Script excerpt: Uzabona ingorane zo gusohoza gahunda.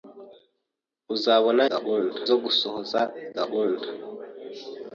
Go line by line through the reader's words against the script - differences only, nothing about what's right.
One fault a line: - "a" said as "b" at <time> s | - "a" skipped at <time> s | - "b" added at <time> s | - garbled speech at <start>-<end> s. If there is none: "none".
- "ingorane" said as "gahunda" at 1.7 s